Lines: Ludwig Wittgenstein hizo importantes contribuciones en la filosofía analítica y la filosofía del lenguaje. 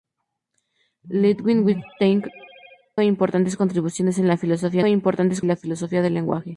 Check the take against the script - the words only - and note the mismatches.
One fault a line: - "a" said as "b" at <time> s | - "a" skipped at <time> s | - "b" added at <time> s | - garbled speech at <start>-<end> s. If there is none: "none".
- "hizo" skipped at 2.2 s
- "analítica" said as "importantes" at 4.8 s